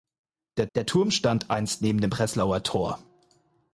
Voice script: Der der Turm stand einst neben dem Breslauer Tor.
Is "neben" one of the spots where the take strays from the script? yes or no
no